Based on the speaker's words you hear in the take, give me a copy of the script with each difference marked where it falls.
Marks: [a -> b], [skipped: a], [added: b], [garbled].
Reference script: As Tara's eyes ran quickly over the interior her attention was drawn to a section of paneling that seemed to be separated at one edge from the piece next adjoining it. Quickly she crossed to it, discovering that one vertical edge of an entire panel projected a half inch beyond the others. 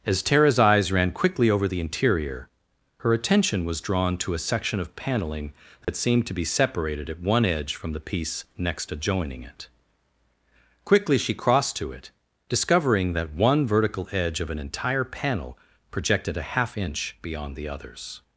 As Tara's eyes ran quickly over the interior her attention was drawn to a section of paneling that seemed to be separated at one edge from the piece next adjoining it. Quickly she crossed to it, discovering that one vertical edge of an entire panel projected a half inch beyond the others.